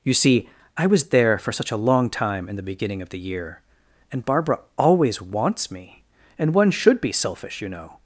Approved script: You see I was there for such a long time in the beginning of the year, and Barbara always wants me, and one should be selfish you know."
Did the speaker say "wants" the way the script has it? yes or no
yes